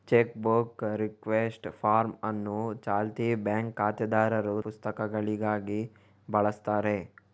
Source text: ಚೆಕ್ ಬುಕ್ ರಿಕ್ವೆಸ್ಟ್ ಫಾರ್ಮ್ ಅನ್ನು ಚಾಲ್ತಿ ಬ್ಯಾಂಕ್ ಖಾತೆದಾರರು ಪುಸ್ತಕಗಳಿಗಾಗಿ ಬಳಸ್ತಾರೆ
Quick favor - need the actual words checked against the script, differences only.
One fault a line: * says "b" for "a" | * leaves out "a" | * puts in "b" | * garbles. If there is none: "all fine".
all fine